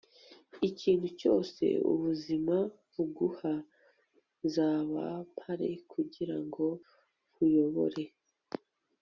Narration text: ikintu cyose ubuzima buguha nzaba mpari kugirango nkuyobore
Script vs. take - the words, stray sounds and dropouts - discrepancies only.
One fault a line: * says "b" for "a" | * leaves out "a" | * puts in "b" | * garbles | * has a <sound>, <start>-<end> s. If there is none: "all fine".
all fine